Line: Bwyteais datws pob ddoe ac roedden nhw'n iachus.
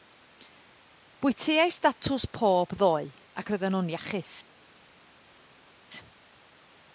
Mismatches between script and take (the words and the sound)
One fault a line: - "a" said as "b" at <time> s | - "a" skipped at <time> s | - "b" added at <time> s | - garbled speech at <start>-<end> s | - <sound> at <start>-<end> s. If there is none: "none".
none